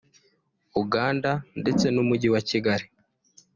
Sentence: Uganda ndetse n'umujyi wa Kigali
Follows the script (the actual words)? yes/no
yes